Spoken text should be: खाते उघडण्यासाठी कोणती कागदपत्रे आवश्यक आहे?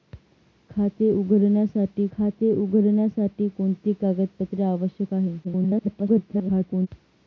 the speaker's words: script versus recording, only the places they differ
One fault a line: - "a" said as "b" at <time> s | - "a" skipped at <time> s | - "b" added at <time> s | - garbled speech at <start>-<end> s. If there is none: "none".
- "खाते उघडण्यासाठी" added at 2.1 s
- garbled speech at 5.4-6.9 s